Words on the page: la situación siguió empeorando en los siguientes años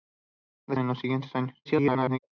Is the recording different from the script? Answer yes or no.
yes